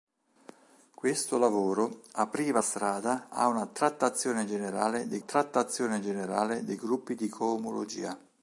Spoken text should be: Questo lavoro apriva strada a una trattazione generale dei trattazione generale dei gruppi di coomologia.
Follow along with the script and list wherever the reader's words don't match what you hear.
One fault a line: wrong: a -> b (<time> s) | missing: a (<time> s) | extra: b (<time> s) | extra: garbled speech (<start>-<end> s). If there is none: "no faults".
no faults